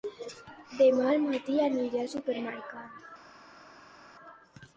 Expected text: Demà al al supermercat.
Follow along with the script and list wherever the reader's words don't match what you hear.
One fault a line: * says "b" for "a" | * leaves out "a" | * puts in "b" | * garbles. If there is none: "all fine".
* puts in "matí aniré"